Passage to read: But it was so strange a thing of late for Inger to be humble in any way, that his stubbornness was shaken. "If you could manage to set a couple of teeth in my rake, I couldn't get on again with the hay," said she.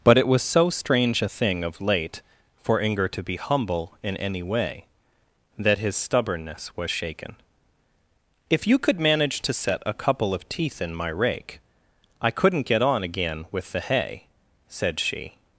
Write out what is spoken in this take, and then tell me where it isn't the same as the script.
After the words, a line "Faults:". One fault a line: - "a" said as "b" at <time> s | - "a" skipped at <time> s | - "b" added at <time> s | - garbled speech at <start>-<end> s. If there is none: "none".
But it was so strange a thing of late for Inger to be humble in any way, that his stubbornness was shaken. "If you could manage to set a couple of teeth in my rake, I couldn't get on again with the hay," said she.
Faults:
none